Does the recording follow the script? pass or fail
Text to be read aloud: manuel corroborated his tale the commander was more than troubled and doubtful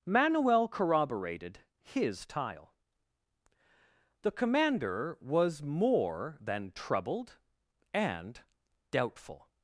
fail